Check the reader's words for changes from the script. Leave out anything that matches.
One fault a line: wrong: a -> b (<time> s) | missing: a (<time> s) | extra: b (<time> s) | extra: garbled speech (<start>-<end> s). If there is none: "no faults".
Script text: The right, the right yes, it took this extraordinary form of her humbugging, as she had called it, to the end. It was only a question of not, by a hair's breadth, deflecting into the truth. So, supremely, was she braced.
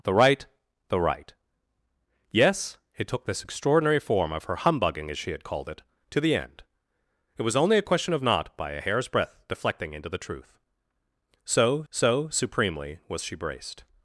extra: so (11.9 s)